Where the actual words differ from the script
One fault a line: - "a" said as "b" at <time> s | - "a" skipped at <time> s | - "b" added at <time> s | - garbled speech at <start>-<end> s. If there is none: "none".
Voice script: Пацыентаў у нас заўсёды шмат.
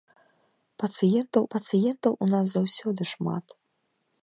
- "пацыентаў" added at 1.5 s